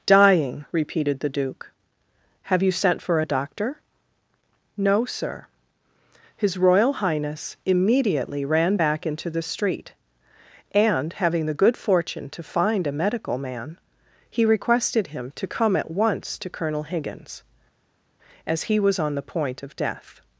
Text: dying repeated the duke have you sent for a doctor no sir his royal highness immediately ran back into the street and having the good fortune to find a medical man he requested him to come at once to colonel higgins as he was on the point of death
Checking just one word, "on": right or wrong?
right